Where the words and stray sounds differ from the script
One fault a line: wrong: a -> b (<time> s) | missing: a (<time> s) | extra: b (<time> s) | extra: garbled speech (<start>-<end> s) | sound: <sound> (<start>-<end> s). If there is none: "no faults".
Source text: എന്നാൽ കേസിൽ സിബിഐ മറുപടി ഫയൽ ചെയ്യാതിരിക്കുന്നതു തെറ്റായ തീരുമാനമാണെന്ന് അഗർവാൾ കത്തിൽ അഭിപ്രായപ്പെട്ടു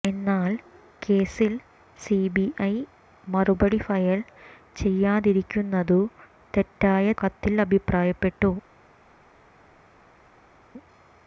missing: തീരുമാനമാണെന്ന് അഗർവാൾ (7.1 s)